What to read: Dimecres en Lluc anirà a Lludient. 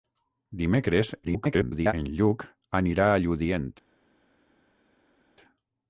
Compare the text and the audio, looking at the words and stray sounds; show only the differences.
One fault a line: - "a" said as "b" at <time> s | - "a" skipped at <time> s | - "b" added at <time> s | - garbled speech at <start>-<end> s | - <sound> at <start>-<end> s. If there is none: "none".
- garbled speech at 1.2-1.9 s